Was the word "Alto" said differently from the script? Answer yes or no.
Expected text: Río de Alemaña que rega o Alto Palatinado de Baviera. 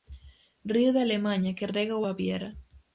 yes